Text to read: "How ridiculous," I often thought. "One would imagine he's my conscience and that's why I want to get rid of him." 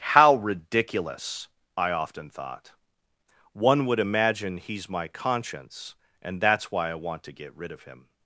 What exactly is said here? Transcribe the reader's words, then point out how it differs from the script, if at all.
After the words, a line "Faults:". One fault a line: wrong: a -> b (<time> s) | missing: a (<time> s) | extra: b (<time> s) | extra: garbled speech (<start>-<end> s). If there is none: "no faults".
"How ridiculous," I often thought. "One would imagine he's my conscience and that's why I want to get rid of him."
Faults:
no faults